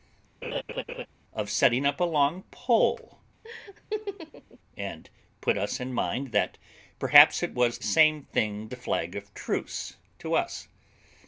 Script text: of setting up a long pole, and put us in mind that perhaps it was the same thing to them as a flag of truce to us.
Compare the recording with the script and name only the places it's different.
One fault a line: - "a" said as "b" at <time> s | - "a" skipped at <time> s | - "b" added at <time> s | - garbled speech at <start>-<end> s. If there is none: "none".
- "the" skipped at 7.8 s
- "to them as" skipped at 8.7 s